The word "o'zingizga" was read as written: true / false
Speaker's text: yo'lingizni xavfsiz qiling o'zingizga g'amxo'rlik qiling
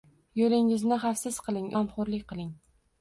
false